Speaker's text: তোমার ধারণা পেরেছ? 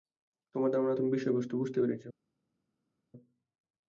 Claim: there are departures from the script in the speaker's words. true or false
true